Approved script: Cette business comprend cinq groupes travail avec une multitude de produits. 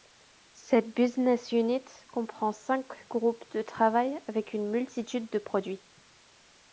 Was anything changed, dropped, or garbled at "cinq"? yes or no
no